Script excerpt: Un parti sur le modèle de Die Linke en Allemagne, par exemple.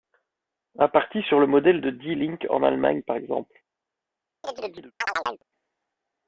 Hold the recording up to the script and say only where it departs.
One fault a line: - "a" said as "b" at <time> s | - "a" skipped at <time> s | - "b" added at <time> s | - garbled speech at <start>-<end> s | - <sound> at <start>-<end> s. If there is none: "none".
- chirp at 4.4-5.4 s